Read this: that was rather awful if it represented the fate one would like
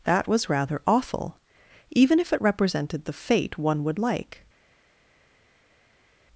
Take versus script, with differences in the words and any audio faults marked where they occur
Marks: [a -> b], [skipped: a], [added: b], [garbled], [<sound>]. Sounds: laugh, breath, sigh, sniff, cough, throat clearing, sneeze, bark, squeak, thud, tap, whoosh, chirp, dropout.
that was rather awful [added: even] if it represented the fate one would like